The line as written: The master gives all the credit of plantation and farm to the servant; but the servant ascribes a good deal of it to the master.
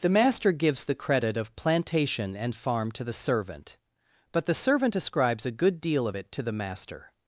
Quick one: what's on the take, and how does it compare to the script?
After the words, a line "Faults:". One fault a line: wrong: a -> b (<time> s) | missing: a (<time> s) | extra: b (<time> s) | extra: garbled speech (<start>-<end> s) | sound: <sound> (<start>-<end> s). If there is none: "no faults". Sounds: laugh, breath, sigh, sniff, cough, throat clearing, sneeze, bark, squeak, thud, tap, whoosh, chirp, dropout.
The master gives the credit of plantation and farm to the servant; but the servant ascribes a good deal of it to the master.
Faults:
missing: all (0.8 s)